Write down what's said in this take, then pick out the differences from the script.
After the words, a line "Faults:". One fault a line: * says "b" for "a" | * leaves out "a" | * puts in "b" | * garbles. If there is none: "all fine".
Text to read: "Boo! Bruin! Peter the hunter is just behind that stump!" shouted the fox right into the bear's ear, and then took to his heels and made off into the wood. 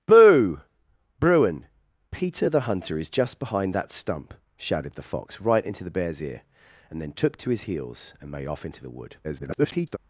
"Boo! Bruin! Peter the hunter is just behind that stump!" shouted the fox right into the bear's ear, and then took to his heels and made off into the wood. [garbled]
Faults:
* garbles